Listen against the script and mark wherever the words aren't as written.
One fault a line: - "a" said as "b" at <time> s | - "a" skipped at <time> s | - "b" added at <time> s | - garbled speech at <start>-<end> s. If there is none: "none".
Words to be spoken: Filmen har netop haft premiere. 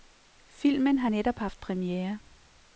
none